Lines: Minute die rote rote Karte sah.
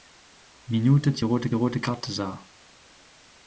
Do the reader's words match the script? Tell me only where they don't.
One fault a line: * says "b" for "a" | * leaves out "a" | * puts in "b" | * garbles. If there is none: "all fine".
all fine